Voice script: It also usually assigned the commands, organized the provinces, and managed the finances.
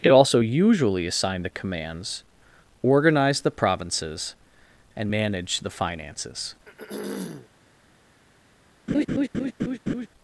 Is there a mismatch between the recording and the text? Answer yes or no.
no